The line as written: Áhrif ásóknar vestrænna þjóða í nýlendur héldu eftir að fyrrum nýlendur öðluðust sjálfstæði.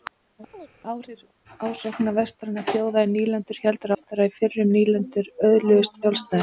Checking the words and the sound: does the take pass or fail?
fail